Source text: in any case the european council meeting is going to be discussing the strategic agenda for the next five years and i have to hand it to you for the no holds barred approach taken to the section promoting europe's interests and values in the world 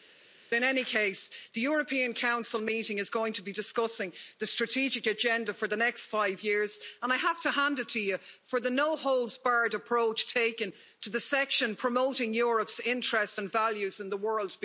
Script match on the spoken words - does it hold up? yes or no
yes